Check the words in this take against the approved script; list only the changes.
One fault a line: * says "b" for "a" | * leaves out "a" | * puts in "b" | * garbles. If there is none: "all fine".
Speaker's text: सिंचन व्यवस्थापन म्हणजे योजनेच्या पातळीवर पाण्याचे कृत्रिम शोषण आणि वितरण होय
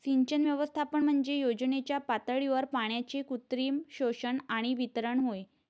all fine